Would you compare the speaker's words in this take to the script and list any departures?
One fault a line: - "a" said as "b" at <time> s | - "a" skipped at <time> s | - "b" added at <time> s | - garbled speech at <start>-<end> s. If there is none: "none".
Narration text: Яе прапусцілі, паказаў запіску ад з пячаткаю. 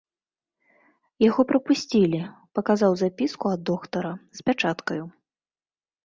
- "Яе" said as "Яго" at 1.3 s
- "доктара" added at 3.7 s